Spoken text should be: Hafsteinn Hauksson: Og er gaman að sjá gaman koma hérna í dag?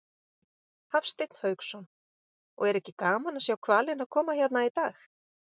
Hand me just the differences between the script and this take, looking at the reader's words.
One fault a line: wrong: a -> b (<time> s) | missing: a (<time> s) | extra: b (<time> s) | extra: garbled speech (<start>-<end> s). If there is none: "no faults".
extra: ekki (2.8 s)
wrong: gaman -> hvalina (3.7 s)